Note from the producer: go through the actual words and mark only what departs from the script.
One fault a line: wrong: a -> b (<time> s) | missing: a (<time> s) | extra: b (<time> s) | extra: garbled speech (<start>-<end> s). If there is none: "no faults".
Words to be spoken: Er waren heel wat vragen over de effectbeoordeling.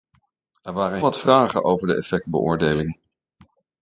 missing: heel (1.0 s)